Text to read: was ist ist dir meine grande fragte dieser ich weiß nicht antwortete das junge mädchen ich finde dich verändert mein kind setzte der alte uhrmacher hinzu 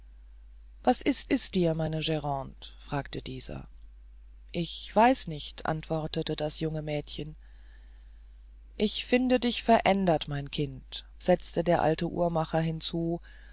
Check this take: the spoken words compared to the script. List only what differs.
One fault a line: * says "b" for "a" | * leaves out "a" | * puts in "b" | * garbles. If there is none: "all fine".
all fine